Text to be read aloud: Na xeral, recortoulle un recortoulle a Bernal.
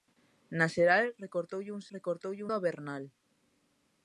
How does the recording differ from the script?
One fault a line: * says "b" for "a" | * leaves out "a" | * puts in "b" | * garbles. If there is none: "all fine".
all fine